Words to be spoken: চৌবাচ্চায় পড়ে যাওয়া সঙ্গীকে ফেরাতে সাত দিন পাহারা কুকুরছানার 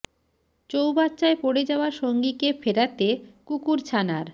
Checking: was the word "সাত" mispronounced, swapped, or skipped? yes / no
yes